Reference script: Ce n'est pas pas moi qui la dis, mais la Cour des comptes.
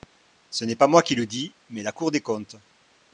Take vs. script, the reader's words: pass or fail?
fail